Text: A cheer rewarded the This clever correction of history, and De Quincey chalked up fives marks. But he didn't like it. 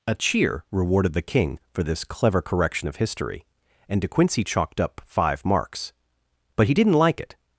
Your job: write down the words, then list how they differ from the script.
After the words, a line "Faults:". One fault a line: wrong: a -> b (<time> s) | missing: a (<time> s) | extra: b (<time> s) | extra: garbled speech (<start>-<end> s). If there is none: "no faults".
A cheer rewarded the King for this clever correction of history, and De Quincey chalked up five marks. But he didn't like it.
Faults:
extra: King for (1.2 s)
wrong: fives -> five (5.0 s)